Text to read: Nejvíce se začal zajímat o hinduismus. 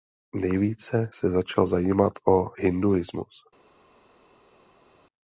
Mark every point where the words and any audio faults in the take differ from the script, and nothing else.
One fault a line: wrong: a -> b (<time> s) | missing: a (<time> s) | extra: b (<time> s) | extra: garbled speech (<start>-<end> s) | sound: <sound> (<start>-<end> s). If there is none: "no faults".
no faults